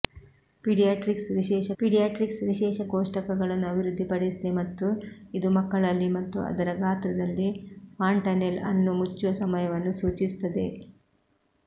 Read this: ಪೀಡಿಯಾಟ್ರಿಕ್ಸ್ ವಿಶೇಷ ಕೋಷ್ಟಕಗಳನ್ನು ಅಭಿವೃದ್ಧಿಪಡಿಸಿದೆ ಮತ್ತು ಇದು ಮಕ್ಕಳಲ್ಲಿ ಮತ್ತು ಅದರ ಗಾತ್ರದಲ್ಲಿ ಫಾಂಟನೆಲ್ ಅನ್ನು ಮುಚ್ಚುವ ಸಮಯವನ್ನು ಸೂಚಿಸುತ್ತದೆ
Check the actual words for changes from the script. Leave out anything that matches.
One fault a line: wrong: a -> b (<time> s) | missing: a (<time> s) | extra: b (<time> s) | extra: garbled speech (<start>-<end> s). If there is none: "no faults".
extra: ಪೀಡಿಯಾಟ್ರಿಕ್ಸ್ ವಿಶೇಷ (1.8 s)